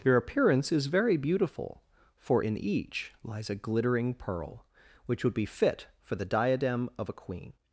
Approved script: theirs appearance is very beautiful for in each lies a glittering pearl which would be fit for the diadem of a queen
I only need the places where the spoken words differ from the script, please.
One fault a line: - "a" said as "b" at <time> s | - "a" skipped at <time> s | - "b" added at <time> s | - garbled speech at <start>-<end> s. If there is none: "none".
- "theirs" said as "their" at 0.0 s